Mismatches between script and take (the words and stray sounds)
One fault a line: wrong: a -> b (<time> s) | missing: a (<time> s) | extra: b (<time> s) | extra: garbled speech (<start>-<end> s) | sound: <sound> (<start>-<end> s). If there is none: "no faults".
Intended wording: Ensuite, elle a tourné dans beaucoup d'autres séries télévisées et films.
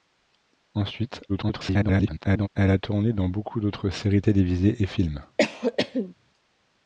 extra: garbled speech (1.3-2.5 s)
sound: cough (5.4-6.1 s)